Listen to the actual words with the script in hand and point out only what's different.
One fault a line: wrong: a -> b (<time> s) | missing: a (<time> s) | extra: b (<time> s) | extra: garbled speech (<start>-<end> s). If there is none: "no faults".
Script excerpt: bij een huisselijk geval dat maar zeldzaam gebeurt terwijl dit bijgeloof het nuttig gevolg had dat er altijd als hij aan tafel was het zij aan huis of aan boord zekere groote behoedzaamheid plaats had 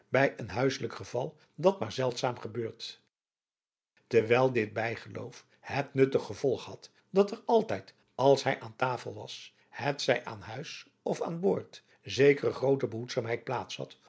no faults